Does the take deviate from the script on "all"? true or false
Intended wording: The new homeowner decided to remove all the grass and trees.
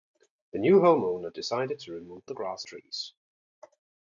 true